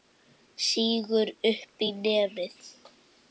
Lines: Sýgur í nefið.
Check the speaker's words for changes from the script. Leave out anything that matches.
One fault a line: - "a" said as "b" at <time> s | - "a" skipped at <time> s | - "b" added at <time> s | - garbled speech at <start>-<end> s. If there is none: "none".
- "upp" added at 1.5 s